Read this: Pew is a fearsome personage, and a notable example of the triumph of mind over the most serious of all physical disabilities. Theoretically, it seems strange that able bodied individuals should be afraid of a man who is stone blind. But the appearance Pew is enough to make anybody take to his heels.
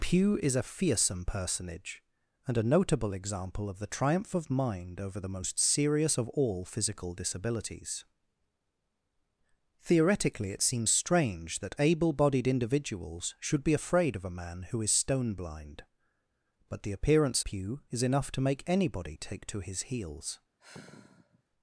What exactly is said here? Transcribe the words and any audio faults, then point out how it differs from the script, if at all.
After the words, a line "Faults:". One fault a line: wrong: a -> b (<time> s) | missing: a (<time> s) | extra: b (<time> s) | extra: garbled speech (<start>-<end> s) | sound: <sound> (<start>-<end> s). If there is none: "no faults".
Pew is a fearsome personage, and a notable example of the triumph of mind over the most serious of all physical disabilities. Theoretically, it seems strange that able bodied individuals should be afraid of a man who is stone blind. But the appearance Pew is enough to make anybody take to his heels.
Faults:
sound: sigh (20.6-21.4 s)